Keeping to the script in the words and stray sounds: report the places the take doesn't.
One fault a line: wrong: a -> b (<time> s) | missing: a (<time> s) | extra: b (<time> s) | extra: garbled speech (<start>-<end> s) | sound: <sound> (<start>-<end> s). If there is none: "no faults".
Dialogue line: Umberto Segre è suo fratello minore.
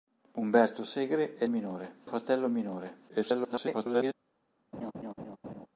wrong: suo -> minore (1.5 s)
extra: garbled speech (3.1-4.1 s)
sound: laugh (4.7-5.7 s)